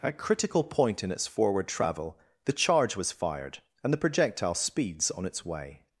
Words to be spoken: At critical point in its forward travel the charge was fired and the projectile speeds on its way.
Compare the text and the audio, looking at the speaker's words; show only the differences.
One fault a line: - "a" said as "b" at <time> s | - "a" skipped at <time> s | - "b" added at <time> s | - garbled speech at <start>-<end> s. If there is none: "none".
none